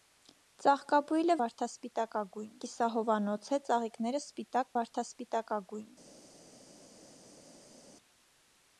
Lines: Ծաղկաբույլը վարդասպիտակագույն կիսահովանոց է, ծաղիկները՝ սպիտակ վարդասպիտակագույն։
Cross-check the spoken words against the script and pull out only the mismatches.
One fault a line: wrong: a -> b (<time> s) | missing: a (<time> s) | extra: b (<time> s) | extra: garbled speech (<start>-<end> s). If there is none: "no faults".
no faults